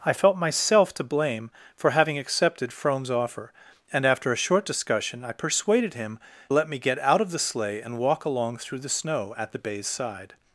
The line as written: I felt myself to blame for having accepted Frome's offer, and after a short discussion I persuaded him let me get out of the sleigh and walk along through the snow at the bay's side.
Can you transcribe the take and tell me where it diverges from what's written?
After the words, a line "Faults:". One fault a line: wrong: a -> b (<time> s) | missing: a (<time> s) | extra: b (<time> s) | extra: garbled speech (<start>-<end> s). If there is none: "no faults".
I felt myself to blame for having accepted Frome's offer, and after a short discussion I persuaded him let me get out of the sleigh and walk along through the snow at the bay's side.
Faults:
no faults